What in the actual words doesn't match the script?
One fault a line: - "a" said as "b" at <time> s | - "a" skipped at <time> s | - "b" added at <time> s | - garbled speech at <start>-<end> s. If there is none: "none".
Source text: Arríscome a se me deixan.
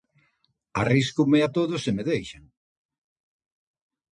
- "todo" added at 1.6 s